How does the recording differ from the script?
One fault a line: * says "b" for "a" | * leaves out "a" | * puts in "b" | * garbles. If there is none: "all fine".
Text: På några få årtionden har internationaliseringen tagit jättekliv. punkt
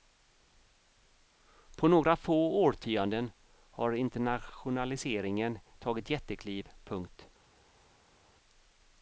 all fine